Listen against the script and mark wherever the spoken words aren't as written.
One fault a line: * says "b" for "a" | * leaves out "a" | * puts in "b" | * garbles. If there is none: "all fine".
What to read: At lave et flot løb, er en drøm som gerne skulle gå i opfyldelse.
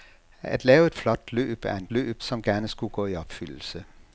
* says "løb" for "drøm"